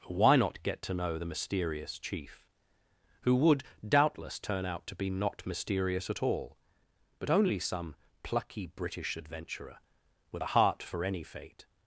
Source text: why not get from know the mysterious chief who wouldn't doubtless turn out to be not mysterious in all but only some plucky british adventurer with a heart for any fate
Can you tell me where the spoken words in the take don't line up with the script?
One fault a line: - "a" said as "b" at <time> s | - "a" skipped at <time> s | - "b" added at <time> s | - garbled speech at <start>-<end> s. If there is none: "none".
- "from" said as "to" at 0.8 s
- "wouldn't" said as "would" at 3.4 s
- "in" said as "at" at 6.1 s